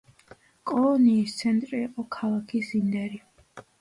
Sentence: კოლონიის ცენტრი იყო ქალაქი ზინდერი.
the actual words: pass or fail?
pass